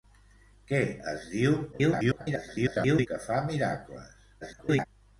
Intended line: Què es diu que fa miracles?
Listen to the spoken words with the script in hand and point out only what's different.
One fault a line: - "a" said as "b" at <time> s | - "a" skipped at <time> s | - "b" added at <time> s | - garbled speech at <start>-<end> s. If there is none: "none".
- garbled speech at 1.7-3.1 s
- garbled speech at 4.4-4.9 s